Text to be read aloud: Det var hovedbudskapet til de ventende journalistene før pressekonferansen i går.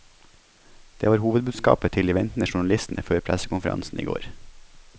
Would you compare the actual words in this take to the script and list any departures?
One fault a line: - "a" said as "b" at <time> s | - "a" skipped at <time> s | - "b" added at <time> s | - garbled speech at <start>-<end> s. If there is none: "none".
none